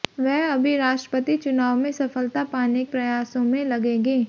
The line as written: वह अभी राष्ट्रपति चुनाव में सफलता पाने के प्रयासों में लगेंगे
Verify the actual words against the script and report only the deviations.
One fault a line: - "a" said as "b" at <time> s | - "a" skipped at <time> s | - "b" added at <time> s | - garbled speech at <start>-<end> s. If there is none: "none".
- "के" skipped at 2.9 s